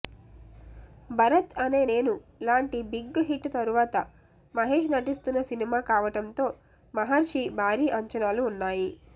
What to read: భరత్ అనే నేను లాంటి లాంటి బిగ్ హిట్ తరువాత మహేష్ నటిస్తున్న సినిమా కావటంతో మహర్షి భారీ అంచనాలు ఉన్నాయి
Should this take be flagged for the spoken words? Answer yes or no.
yes